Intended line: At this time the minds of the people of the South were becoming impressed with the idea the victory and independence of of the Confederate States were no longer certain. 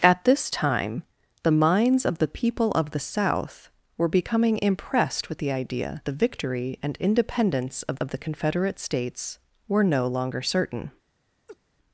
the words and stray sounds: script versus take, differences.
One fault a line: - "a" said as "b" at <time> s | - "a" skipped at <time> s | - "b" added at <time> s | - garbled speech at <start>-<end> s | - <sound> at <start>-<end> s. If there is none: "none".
- laugh at 11.5-11.6 s